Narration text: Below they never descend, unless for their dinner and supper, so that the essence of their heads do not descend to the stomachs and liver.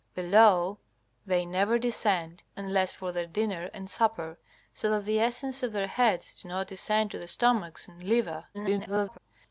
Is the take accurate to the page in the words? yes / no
no